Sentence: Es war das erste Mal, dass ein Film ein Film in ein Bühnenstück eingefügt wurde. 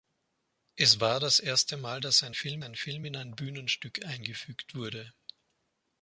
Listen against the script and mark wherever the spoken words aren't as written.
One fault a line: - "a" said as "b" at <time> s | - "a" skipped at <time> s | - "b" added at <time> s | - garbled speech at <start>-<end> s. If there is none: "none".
none